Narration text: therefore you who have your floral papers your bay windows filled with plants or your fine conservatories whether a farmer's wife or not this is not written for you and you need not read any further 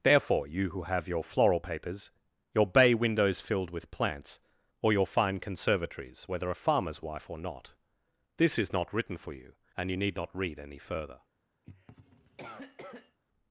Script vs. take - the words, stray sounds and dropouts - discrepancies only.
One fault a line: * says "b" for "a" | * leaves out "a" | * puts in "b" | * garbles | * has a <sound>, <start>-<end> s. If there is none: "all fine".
* has a cough, 11.6-13.2 s